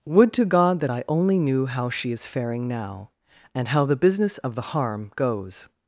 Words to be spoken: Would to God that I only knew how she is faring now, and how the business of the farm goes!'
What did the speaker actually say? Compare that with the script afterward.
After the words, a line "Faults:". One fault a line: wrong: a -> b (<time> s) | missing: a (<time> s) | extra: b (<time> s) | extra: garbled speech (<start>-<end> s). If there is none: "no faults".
Would to God that I only knew how she is faring now, and how the business of the harm goes!'
Faults:
wrong: farm -> harm (4.7 s)